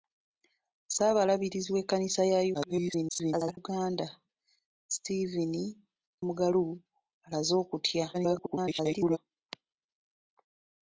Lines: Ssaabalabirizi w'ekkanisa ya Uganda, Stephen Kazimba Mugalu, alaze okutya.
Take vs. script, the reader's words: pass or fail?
fail